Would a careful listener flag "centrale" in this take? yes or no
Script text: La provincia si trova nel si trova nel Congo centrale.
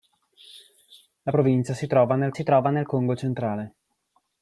no